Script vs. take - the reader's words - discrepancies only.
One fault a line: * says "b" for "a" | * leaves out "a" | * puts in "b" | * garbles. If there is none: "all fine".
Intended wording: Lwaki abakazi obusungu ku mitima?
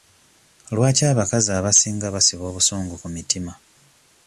* puts in "abasinga basiba"